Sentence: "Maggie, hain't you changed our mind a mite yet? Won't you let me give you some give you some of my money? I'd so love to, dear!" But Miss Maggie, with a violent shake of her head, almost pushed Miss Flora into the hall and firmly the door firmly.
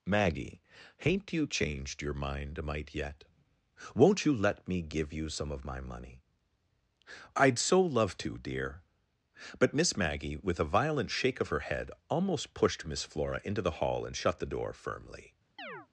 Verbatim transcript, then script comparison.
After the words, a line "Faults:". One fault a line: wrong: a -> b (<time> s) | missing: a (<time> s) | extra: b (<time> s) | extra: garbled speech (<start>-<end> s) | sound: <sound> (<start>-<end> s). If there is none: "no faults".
"Maggie, hain't you changed your mind a mite yet? Won't you let me give you some of my money? I'd so love to, dear!" But Miss Maggie, with a violent shake of her head, almost pushed Miss Flora into the hall and shut the door firmly.
Faults:
wrong: our -> your (2.0 s)
missing: give you some (5.5 s)
wrong: firmly -> shut (14.2 s)
sound: chirp (15.6-15.9 s)